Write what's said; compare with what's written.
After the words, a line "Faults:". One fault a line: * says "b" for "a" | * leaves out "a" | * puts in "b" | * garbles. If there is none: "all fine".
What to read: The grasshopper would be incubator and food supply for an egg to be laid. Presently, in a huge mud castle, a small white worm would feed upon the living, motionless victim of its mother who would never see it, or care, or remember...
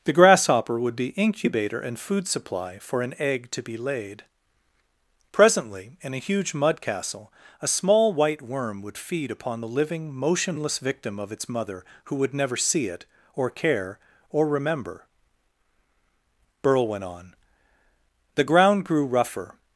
The grasshopper would be incubator and food supply for an egg to be laid. Presently, in a huge mud castle, a small white worm would feed upon the living, motionless victim of its mother who would never see it, or care, or remember... Burl went on. The ground grew rougher
Faults:
* puts in "Burl went on The ground grew rougher"